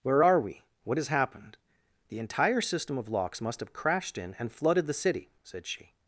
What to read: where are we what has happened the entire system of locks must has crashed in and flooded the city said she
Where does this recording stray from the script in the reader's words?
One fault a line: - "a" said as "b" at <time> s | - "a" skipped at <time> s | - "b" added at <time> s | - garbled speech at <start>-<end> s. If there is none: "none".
- "has" said as "have" at 3.6 s